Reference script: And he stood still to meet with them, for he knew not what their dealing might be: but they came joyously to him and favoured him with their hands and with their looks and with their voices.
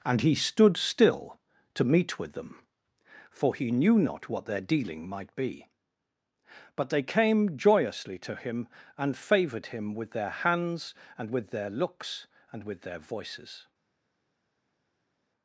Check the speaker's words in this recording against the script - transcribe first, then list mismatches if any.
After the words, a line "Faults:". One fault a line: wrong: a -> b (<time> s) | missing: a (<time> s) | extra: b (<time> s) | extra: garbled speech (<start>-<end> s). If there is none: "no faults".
And he stood still to meet with them, for he knew not what their dealing might be: but they came joyously to him and favoured him with their hands and with their looks and with their voices.
Faults:
no faults